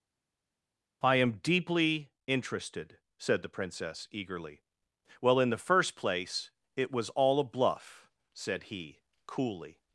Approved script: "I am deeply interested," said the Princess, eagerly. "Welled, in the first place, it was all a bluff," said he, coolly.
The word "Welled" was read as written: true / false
false